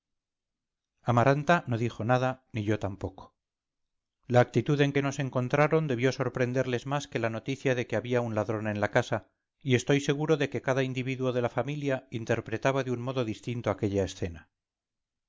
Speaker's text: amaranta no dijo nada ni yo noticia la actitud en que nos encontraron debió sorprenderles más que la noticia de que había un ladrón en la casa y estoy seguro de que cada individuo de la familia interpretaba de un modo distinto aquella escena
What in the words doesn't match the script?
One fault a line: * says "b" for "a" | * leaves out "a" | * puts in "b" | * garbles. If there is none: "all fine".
* says "tampoco" for "noticia"